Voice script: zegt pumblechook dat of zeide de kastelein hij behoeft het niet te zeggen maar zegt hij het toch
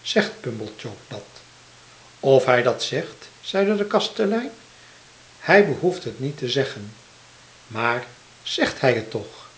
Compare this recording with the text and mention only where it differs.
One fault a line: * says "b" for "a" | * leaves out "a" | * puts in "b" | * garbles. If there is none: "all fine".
* puts in "hij dat zegt"